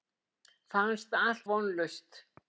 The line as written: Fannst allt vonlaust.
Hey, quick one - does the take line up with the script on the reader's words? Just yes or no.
yes